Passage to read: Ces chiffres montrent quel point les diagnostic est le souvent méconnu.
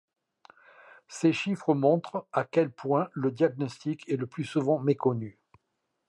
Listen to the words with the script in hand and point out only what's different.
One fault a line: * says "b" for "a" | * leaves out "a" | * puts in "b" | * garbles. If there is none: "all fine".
* puts in "à"
* says "le" for "les"
* puts in "plus"